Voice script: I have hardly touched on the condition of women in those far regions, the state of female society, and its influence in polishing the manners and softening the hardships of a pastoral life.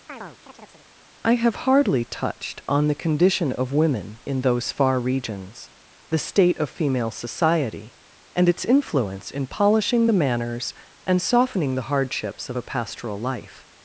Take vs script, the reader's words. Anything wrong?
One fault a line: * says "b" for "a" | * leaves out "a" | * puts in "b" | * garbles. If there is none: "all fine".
all fine